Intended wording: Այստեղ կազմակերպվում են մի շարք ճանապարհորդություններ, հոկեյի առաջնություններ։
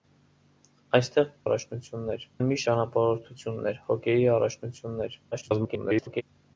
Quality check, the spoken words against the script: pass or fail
fail